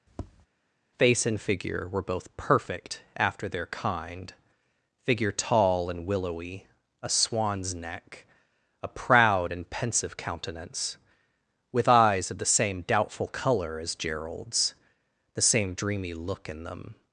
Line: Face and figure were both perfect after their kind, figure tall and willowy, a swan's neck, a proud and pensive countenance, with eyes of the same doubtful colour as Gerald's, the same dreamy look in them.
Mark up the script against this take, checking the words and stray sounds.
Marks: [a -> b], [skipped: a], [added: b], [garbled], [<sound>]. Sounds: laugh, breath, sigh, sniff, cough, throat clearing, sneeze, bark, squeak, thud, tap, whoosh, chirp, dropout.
[tap] Face and figure were both perfect after their kind, figure tall and willowy, a swan's neck, a proud and pensive countenance, with eyes of the same doubtful colour as Gerald's, the same dreamy look in them.